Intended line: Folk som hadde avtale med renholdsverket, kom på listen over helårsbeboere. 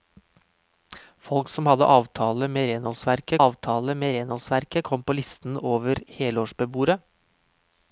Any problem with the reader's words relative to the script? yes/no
yes